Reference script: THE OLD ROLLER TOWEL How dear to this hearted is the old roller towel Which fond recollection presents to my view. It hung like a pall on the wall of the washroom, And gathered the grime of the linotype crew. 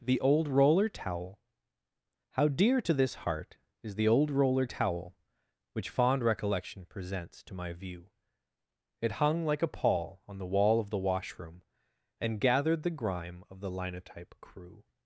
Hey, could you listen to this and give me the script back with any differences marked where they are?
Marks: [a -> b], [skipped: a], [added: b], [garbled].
THE OLD ROLLER TOWEL How dear to this [hearted -> heart] is the old roller towel Which fond recollection presents to my view. It hung like a pall on the wall of the washroom, And gathered the grime of the linotype crew.